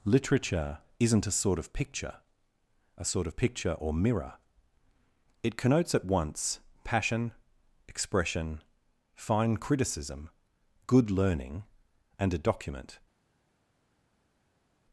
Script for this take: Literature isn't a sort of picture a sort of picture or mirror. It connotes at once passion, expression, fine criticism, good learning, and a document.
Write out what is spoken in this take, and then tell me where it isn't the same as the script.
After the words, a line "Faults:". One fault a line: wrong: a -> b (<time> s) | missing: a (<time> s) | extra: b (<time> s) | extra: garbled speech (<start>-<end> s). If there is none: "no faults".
Literature isn't a sort of picture a sort of picture or mirror. It connotes at once passion, expression, fine criticism, good learning, and a document.
Faults:
no faults